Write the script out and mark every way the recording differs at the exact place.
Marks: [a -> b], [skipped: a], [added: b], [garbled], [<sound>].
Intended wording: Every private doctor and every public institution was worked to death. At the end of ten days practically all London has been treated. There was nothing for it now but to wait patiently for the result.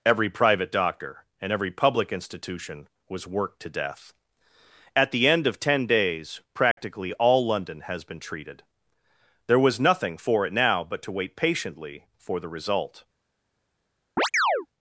Every private doctor and every public institution was worked to death. At the end of ten days practically [dropout] all London has been treated. There was nothing for it now but to wait patiently for the result. [chirp]